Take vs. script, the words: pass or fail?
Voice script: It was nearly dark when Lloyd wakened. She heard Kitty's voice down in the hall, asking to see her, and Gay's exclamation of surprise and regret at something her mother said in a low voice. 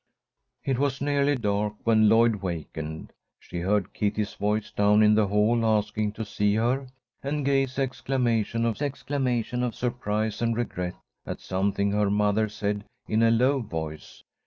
fail